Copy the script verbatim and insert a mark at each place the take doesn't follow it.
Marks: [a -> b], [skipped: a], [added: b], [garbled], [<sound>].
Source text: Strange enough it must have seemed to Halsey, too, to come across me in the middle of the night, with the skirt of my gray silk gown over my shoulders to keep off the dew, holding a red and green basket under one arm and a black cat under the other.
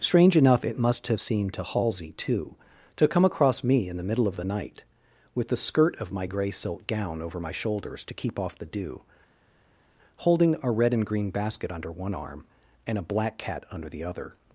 Strange enough it must have seemed to Halsey, too, to come across me in the middle of the night, with the skirt of my gray silk gown over my shoulders to keep off the dew, holding a red and green basket under one arm and a black cat under the other.